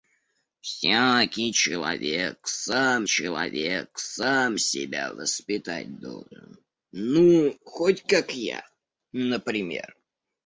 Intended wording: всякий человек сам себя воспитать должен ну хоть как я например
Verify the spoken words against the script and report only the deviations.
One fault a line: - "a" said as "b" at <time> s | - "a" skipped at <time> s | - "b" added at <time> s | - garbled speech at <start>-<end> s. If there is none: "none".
- "человек сам" added at 3.1 s